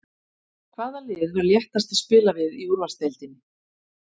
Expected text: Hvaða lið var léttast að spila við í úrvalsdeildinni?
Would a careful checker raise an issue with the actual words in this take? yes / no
no